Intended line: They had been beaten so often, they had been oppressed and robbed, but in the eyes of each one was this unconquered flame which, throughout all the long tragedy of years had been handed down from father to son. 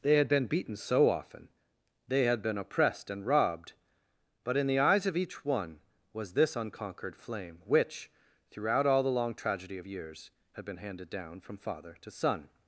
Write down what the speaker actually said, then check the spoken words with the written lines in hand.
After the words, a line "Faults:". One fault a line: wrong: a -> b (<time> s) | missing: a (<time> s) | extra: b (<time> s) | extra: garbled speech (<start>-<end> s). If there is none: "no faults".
They had been beaten so often, they had been oppressed and robbed, but in the eyes of each one was this unconquered flame which, throughout all the long tragedy of years had been handed down from father to son.
Faults:
no faults